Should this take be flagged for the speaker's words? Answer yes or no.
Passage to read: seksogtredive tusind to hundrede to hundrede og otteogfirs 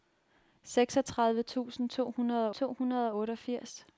no